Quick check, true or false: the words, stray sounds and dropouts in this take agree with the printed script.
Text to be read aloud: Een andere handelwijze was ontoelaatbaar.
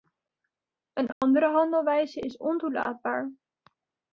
false